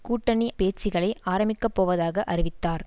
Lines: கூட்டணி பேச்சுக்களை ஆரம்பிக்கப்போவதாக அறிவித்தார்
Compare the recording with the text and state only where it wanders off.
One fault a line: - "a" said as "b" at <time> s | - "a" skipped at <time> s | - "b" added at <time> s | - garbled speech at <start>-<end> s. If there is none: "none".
none